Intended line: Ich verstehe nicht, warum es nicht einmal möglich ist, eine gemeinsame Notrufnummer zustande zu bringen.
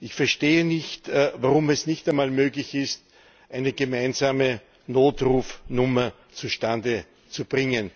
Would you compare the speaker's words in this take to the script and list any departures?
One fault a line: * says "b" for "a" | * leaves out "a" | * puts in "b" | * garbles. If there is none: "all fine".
all fine